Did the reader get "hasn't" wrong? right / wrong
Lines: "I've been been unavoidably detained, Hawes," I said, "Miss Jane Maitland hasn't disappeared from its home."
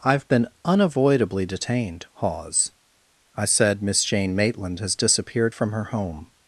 wrong